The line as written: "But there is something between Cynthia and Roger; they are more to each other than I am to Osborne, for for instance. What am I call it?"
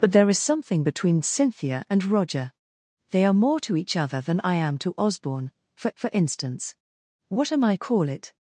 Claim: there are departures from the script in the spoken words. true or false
false